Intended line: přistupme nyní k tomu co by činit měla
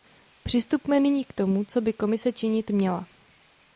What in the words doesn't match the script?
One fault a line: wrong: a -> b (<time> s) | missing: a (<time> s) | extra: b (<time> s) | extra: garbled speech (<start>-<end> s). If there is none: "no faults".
extra: komise (1.9 s)